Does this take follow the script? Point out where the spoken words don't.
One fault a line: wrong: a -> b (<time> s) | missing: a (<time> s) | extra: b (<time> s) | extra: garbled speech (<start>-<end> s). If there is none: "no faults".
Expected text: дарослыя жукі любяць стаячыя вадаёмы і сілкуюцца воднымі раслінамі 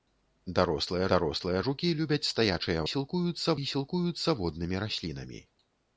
extra: дарослыя (1.1 s)
wrong: вадаёмы -> сілкуюцца (2.9 s)